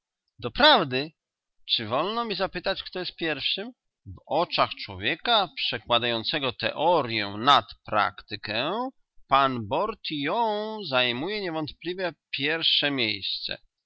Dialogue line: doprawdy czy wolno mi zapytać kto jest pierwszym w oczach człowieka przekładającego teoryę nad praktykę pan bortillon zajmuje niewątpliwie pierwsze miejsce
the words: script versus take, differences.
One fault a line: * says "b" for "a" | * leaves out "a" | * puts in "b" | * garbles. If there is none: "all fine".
all fine